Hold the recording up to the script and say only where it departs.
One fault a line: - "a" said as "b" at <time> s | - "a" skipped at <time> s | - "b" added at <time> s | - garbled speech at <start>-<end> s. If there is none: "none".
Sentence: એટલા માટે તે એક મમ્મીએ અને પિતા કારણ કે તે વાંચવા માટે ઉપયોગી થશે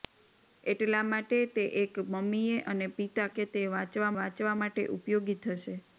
- "કારણ" skipped at 3.3 s
- "વાંચવા" added at 4.1 s